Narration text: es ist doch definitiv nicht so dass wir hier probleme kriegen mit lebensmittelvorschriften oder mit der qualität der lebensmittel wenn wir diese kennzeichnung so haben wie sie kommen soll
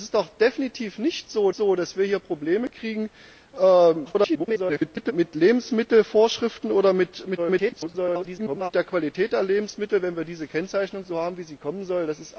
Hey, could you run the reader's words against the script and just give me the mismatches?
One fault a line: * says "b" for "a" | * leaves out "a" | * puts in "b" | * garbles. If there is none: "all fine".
* puts in "so"
* garbles
* garbles